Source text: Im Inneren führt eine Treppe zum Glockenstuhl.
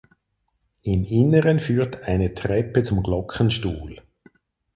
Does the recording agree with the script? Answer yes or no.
yes